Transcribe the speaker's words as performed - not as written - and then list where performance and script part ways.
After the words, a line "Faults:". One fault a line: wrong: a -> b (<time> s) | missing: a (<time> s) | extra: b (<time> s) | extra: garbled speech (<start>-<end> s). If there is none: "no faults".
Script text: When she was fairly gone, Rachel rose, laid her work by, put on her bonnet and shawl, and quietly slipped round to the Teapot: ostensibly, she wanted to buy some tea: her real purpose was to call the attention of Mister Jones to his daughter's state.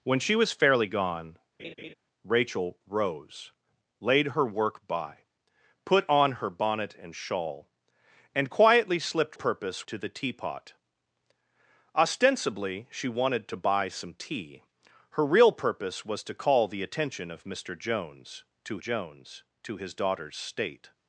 When she was fairly gone, Rachel rose, laid her work by, put on her bonnet and shawl, and quietly slipped purpose to the Teapot: ostensibly, she wanted to buy some tea: her real purpose was to call the attention of Mister Jones to Jones to his daughter's state.
Faults:
wrong: round -> purpose (9.3 s)
extra: Jones to (18.8 s)